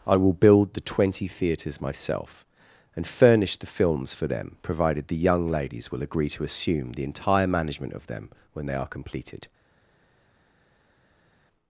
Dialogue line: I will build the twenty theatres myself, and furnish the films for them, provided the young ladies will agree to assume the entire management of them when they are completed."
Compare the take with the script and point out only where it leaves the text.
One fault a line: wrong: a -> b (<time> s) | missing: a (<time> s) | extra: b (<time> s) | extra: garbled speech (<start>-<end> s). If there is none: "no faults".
no faults